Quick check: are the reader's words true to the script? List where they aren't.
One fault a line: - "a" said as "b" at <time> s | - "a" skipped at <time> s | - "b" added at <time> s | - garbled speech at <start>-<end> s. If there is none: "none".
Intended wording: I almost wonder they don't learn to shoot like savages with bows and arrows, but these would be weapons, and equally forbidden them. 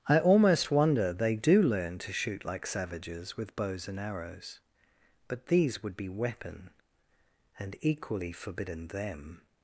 - "don't" said as "do" at 1.4 s
- "weapons" said as "weapon" at 6.1 s